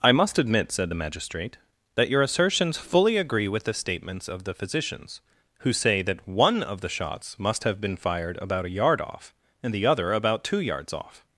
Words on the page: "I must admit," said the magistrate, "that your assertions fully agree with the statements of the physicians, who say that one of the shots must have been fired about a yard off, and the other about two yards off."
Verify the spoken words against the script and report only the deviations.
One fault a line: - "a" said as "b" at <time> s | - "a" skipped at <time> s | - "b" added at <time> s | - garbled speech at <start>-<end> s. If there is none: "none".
none